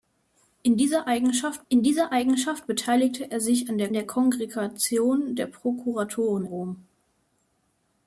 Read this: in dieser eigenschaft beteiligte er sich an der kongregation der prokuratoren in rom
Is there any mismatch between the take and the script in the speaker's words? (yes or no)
yes